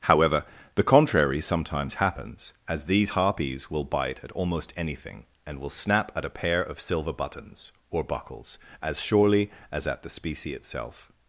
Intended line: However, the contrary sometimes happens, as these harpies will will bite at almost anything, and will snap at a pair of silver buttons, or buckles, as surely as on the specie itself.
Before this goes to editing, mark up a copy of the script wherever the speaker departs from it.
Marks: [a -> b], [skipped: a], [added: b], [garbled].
However, the contrary sometimes happens, as these harpies will [skipped: will] bite at almost anything, and will snap at a pair of silver buttons, or buckles, as surely as [on -> at] the specie itself.